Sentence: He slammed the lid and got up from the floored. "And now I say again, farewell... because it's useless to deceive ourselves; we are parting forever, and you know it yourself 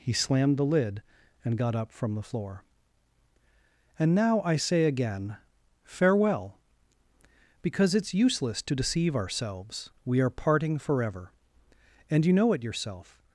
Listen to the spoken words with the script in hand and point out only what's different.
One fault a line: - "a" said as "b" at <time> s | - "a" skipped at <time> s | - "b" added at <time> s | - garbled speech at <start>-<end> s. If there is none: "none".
- "floored" said as "floor" at 2.2 s